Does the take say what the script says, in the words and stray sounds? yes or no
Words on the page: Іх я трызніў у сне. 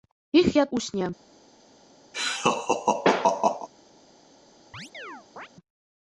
no